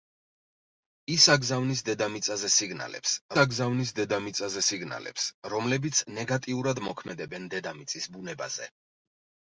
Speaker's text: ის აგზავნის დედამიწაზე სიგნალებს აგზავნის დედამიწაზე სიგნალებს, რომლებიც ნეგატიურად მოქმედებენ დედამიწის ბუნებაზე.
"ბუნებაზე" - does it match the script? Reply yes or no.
yes